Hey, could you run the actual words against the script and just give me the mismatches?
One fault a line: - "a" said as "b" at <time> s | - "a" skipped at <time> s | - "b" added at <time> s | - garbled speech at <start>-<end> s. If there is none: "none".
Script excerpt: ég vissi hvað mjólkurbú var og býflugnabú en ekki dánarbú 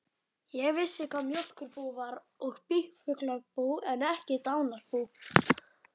none